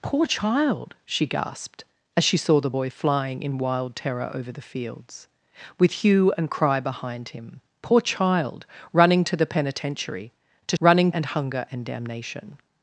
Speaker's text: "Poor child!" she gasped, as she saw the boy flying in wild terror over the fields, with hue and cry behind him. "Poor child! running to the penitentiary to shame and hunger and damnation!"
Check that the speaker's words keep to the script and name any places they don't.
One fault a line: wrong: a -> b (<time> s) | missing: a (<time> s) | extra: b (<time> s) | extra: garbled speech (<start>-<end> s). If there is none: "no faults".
wrong: shame -> running (10.8 s)